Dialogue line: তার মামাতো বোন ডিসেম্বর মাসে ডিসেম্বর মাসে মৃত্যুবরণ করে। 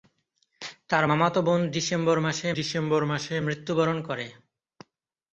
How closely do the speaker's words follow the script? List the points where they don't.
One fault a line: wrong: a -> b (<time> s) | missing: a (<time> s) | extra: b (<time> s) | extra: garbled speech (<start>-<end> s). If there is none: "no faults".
no faults